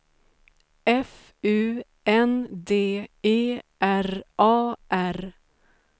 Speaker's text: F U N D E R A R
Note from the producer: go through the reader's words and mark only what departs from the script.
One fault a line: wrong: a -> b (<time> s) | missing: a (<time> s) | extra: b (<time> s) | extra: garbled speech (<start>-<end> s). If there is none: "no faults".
no faults